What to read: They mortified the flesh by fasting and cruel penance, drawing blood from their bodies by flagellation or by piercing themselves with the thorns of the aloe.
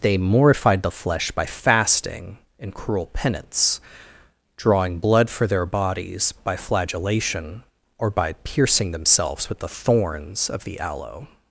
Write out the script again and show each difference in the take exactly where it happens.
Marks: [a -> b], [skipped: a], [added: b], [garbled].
They mortified the flesh by fasting and cruel penance, drawing blood [from -> for] their bodies by flagellation or by piercing themselves with the thorns of the aloe.